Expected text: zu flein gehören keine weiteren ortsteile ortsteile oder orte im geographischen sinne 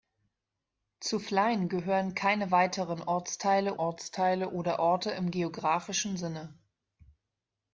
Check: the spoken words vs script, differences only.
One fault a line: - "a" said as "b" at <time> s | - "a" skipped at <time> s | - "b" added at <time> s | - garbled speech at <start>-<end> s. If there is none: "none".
none